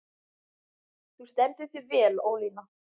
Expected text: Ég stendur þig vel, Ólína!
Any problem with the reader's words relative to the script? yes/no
yes